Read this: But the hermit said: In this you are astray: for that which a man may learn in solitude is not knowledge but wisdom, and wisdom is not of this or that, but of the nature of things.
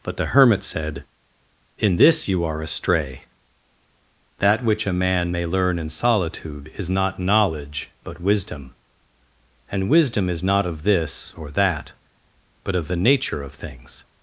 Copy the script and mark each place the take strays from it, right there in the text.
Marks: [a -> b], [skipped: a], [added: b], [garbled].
But the hermit said: In this you are astray: [skipped: for] that which a man may learn in solitude is not knowledge but wisdom, and wisdom is not of this or that, but of the nature of things.